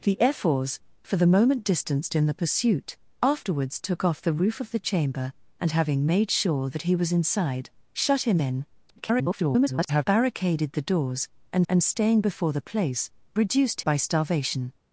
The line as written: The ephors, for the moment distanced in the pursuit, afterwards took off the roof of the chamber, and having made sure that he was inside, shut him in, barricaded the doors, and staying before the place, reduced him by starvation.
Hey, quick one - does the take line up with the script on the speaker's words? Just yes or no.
no